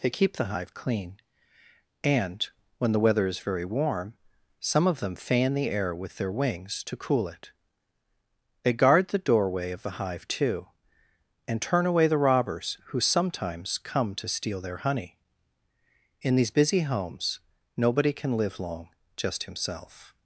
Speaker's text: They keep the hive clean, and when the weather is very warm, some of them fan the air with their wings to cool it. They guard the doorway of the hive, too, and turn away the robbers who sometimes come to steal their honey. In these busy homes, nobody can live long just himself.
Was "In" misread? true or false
false